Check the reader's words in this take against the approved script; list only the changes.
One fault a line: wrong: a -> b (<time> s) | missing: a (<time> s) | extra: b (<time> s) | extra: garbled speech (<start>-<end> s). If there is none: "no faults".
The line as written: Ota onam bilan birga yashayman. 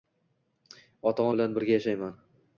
missing: onam (1.3 s)